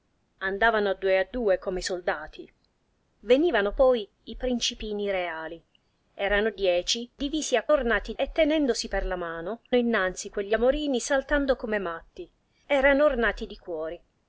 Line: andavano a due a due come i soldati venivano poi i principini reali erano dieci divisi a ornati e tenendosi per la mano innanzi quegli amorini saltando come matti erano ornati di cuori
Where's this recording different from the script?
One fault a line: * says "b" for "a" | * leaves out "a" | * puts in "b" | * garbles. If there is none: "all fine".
all fine